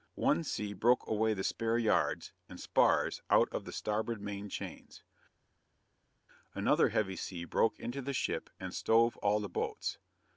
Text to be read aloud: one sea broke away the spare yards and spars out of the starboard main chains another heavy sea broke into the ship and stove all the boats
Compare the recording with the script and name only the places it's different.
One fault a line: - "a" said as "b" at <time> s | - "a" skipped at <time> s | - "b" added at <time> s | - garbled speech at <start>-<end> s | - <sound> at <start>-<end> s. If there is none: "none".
none